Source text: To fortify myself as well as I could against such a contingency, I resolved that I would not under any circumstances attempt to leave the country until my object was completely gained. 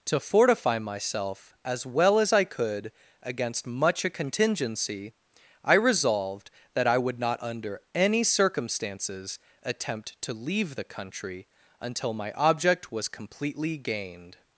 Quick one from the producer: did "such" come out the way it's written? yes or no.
no